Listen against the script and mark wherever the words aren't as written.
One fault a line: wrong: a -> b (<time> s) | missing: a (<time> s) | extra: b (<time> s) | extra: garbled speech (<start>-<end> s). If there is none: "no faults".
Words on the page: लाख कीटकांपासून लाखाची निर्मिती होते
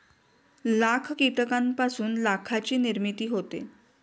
no faults